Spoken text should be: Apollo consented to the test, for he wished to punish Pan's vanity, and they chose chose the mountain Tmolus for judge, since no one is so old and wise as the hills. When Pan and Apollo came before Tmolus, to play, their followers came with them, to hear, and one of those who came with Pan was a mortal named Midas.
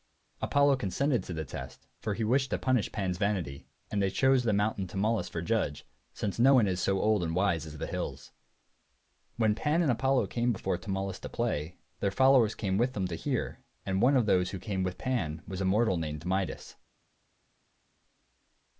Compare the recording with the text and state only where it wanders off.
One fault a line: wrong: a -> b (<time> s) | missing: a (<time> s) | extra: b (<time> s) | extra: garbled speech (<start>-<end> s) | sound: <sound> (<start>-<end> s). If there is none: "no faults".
missing: chose (4.4 s)